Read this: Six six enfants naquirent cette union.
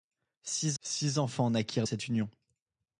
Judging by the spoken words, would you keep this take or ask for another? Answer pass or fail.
pass